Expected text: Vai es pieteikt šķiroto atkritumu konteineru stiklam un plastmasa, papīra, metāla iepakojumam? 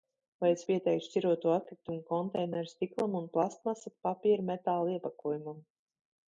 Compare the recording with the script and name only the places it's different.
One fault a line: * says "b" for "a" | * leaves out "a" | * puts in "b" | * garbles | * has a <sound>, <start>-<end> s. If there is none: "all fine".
all fine